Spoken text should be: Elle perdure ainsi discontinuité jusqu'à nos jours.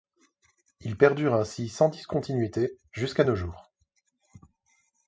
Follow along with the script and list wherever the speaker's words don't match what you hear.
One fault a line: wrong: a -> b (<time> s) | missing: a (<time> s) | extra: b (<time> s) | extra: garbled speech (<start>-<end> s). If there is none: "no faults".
wrong: Elle -> Il (0.8 s)
extra: sans (1.7 s)